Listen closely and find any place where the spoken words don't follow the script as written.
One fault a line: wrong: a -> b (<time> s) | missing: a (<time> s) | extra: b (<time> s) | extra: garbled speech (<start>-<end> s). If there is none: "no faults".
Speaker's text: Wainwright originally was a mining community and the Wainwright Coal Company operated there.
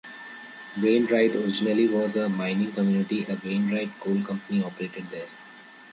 missing: and (3.2 s)